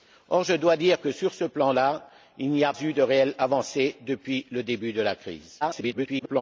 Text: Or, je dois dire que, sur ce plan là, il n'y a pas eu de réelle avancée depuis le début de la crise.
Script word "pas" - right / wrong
wrong